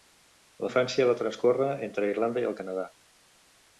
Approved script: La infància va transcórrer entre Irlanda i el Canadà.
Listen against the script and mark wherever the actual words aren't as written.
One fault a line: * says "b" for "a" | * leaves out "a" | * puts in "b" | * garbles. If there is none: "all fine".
all fine